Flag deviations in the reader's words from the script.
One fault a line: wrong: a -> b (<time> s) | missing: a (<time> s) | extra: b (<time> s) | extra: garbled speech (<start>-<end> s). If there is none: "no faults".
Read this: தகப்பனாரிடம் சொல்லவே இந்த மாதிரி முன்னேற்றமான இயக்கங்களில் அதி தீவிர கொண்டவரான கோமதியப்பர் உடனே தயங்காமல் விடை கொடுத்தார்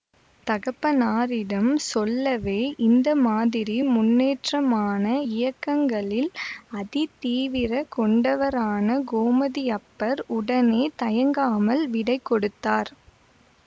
no faults